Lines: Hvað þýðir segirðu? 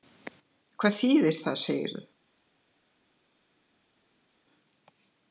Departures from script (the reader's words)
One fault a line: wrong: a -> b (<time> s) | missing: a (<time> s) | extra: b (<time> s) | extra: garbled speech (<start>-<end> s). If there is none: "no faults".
extra: það (1.4 s)